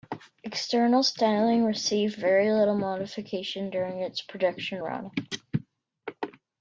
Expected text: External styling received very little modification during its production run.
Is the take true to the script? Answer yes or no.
yes